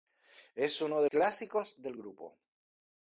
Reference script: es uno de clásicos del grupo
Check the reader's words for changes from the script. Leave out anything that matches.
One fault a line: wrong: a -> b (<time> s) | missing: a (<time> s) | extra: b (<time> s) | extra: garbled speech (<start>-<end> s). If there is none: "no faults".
no faults